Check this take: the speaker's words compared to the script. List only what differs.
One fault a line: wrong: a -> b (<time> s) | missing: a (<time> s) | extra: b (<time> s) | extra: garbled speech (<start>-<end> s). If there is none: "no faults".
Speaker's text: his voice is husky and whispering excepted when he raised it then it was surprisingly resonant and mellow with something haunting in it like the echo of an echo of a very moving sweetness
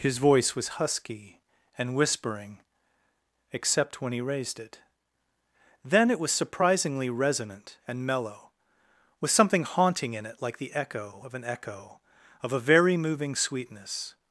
wrong: is -> was (0.6 s)
wrong: excepted -> except (3.5 s)